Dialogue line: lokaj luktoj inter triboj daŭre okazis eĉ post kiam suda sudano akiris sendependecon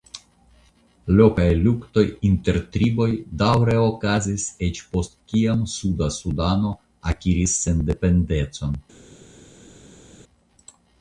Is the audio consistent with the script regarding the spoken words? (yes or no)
yes